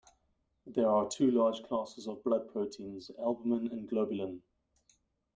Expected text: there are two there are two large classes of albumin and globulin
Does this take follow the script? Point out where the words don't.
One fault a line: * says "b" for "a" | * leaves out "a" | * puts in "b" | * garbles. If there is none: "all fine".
* leaves out "there are two"
* puts in "blood proteins"